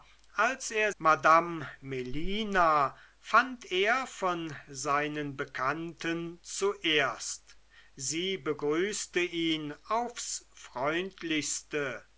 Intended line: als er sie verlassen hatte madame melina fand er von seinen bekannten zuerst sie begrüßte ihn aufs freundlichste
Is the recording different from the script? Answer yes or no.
yes